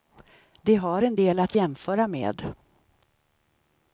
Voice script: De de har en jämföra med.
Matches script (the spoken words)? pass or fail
fail